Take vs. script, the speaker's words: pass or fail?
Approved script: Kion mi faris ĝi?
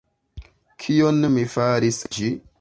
pass